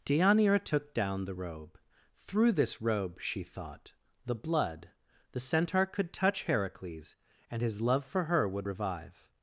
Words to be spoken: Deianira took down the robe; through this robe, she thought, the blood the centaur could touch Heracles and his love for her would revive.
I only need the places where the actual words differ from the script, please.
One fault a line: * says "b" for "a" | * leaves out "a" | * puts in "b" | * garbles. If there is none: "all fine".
all fine